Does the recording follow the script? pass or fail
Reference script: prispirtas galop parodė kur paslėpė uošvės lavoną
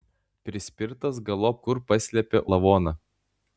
fail